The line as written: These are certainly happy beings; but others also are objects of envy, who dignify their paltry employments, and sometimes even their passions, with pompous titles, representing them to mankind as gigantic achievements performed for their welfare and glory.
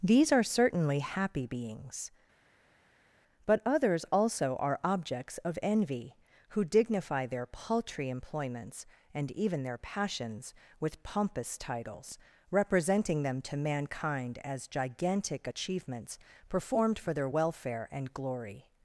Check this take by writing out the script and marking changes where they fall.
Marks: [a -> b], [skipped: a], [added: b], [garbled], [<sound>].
These are certainly happy beings; but others also are objects of envy, who dignify their paltry employments, and [skipped: sometimes] even their passions, with pompous titles, representing them to mankind as gigantic achievements performed for their welfare and glory.